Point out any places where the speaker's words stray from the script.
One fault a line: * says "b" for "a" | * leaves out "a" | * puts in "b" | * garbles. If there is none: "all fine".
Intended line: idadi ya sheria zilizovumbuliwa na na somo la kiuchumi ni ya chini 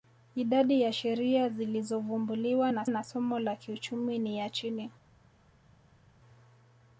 all fine